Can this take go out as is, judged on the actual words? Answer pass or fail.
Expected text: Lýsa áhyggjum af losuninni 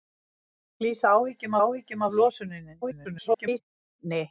fail